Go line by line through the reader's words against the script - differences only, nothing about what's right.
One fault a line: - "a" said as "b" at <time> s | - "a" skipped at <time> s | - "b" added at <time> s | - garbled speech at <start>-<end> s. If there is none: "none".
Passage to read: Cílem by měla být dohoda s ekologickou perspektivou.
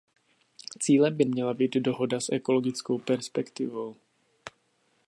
none